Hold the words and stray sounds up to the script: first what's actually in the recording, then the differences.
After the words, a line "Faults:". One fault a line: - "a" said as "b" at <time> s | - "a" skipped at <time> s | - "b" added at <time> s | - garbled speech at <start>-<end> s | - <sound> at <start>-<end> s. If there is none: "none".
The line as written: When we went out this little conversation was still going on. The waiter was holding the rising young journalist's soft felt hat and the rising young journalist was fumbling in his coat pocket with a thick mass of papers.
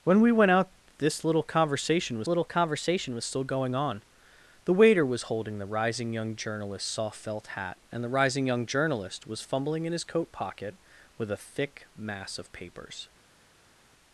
When we went out this little conversation was little conversation was still going on. The waiter was holding the rising young journalist's soft felt hat and the rising young journalist was fumbling in his coat pocket with a thick mass of papers.
Faults:
- "little conversation was" added at 2.3 s